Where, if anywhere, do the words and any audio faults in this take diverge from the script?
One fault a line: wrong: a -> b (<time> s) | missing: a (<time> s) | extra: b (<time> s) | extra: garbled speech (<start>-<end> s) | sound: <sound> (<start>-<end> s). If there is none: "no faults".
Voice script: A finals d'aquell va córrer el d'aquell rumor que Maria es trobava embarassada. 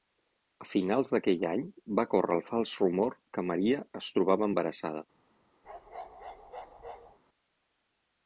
extra: any (1.5 s)
wrong: d'aquell -> fals (2.5 s)
sound: bark (5.6-7.2 s)